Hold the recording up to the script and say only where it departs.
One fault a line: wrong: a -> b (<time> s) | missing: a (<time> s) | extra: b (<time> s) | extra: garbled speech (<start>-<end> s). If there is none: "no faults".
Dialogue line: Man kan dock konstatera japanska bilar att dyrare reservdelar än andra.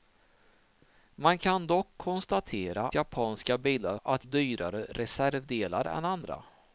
no faults